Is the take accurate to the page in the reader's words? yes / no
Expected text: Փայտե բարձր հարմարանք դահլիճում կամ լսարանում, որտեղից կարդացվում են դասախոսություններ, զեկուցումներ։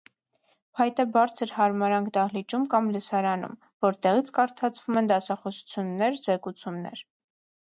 yes